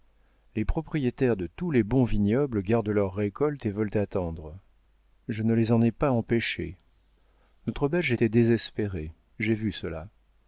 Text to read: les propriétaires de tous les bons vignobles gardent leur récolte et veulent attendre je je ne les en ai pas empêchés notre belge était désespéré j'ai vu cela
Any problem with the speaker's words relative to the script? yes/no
yes